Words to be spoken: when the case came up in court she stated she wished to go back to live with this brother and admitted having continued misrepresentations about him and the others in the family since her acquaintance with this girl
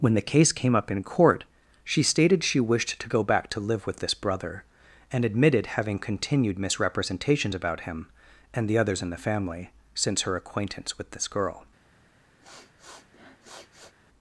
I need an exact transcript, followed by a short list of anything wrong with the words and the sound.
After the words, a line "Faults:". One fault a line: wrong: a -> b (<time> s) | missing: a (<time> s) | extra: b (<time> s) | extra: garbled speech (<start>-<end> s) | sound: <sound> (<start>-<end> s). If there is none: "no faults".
when the case came up in court she stated she wished to go back to live with this brother and admitted having continued misrepresentations about him and the others in the family since her acquaintance with this girl
Faults:
sound: sniff (12.4-13.9 s)